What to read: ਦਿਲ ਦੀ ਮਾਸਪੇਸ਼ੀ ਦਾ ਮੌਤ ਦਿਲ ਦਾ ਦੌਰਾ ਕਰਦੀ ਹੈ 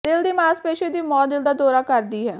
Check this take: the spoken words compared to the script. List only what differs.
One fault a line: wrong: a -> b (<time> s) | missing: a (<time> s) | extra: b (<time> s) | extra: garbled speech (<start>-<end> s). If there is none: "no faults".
wrong: ਦਾ -> ਦੀ (0.9 s)